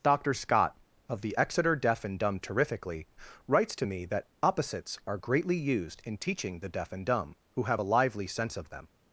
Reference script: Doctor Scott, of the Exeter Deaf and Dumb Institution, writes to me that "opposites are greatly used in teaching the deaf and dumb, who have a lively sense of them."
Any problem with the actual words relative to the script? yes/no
yes